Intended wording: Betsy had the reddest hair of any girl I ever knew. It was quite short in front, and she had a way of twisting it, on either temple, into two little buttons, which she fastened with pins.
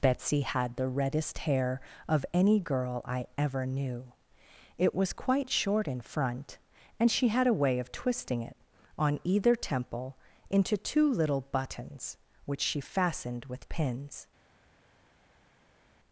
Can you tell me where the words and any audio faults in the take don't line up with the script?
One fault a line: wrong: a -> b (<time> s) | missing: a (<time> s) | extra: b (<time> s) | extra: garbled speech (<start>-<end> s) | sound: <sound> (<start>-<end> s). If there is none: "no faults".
no faults